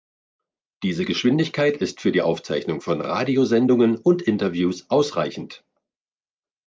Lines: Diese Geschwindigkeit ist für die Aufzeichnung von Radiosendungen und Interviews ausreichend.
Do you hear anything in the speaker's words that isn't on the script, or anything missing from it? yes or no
no